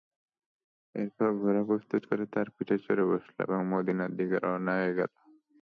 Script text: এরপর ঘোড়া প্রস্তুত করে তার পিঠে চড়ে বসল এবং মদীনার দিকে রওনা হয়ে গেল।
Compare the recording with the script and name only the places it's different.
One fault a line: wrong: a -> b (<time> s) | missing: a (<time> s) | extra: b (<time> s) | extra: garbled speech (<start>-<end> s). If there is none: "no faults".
no faults